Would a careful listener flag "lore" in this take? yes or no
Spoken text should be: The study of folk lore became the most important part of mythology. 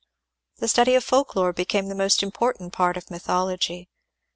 no